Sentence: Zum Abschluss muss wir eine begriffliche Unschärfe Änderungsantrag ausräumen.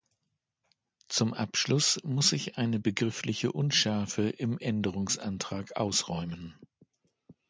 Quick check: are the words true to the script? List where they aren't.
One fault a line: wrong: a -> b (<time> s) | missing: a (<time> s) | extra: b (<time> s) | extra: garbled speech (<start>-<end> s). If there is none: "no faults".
wrong: wir -> ich (2.3 s)
extra: im (4.3 s)